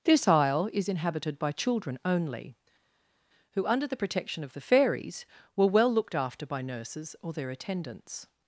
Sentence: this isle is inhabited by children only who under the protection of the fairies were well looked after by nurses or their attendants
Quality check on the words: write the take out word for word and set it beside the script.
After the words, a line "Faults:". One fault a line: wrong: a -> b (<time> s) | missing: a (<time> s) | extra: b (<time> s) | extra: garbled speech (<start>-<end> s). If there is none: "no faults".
this isle is inhabited by children only who under the protection of the fairies were well looked after by nurses or their attendants
Faults:
no faults